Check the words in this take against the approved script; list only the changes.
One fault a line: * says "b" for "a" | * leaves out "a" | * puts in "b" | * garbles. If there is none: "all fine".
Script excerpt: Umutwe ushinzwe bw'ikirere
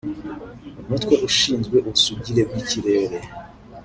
* puts in "ubusugire"